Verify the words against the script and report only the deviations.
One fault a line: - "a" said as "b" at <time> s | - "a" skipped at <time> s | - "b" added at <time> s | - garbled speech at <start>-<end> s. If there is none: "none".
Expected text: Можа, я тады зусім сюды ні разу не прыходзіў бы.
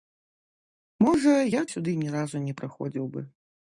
- "тады зусім" skipped at 1.6 s